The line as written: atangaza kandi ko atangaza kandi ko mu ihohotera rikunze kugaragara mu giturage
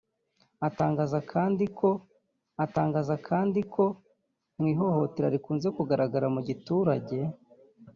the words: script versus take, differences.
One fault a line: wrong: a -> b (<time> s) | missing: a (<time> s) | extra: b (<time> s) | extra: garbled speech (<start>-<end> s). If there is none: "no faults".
no faults